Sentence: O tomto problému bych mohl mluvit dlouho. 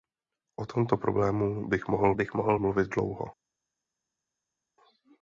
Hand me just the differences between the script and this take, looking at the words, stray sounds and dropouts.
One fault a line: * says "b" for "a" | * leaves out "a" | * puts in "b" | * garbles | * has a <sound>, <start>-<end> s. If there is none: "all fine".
* puts in "bych mohl"